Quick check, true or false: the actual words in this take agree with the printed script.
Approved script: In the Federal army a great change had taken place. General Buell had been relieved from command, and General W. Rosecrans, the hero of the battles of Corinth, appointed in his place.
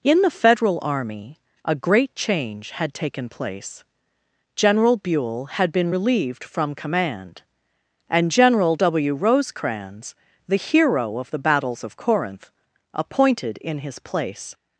true